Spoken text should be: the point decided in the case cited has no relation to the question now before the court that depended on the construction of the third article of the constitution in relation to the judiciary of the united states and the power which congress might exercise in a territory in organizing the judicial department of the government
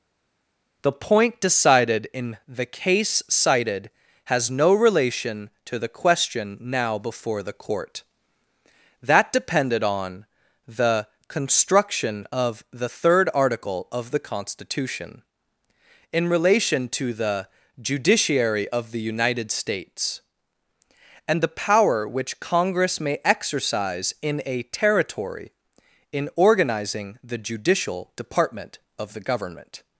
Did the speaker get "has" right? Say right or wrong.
right